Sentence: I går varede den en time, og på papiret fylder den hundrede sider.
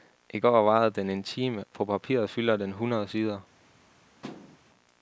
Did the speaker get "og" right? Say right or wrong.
wrong